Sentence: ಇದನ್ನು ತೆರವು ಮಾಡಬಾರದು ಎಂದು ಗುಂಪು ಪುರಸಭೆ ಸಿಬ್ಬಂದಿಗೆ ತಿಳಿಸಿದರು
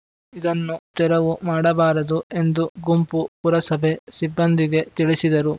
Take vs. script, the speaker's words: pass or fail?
pass